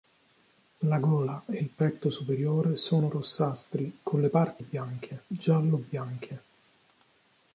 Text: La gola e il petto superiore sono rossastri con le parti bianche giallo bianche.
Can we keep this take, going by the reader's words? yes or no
yes